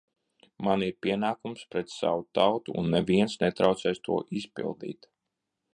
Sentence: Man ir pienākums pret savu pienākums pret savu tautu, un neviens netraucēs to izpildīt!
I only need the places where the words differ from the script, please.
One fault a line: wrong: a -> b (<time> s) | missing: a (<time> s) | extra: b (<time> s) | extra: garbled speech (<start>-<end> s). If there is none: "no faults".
missing: pienākums pret savu (2.2 s)